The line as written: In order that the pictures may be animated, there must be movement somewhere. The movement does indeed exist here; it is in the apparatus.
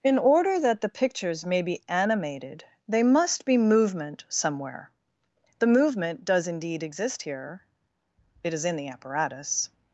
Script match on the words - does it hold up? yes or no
no